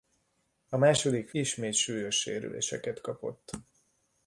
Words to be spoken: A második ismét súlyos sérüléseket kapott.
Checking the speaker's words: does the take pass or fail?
pass